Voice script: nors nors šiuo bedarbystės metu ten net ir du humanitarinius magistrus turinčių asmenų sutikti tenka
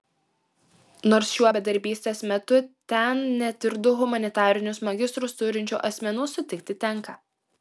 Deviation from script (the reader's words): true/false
true